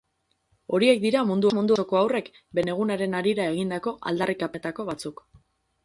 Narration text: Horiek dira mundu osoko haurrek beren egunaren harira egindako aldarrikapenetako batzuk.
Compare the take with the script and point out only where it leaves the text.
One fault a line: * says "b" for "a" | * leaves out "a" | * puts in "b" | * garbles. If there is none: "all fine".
* puts in "mundu"